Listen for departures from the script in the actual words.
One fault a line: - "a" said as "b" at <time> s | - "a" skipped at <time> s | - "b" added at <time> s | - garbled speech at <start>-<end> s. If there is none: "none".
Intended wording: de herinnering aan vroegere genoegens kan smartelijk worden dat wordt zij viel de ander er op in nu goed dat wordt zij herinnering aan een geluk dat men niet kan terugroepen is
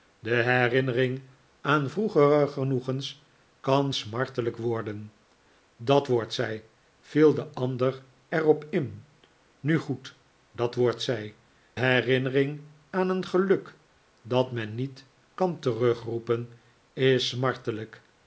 none